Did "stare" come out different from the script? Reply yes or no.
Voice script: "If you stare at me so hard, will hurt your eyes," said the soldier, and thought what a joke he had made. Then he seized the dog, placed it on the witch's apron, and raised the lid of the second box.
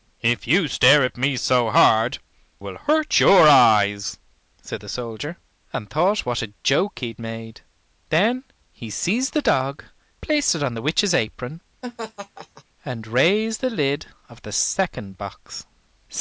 no